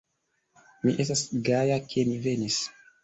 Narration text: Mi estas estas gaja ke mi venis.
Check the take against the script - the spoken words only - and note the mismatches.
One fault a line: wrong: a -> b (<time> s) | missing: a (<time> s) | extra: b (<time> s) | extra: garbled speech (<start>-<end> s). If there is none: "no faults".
missing: estas (1.2 s)